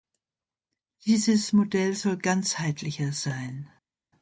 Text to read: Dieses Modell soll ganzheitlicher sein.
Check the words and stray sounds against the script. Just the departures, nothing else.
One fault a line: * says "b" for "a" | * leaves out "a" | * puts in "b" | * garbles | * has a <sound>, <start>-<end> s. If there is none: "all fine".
all fine